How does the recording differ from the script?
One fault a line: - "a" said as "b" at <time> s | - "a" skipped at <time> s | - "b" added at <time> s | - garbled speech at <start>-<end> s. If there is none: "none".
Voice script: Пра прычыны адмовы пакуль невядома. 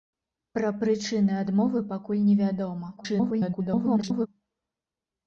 - garbled speech at 3.0-4.3 s